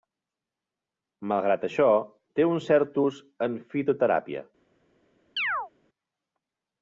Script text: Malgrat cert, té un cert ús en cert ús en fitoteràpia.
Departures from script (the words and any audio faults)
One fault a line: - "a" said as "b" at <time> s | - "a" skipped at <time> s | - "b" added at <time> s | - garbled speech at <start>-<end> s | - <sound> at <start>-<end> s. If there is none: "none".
- "cert" said as "això" at 1.7 s
- "cert ús en" skipped at 3.6 s
- chirp at 5.4-5.7 s